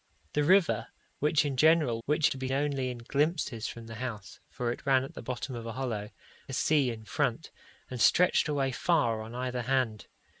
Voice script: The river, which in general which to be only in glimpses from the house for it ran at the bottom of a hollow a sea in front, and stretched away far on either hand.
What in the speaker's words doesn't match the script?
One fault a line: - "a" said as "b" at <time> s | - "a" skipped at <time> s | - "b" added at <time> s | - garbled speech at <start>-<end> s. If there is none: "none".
none